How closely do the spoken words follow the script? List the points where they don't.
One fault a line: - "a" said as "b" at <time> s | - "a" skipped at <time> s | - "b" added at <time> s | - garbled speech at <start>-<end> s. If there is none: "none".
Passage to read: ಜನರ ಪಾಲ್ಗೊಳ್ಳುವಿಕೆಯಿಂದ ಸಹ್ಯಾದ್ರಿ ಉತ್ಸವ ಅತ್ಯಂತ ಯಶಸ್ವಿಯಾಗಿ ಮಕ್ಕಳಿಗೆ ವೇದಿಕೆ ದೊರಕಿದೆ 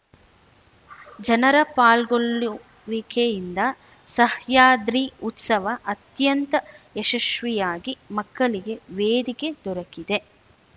none